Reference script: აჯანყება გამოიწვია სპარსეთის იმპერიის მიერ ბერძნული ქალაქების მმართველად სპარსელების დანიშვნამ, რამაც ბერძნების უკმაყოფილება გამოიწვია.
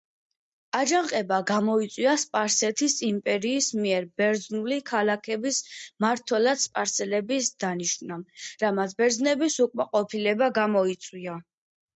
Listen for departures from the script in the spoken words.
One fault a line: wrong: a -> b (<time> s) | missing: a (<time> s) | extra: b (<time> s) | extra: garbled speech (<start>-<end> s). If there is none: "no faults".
no faults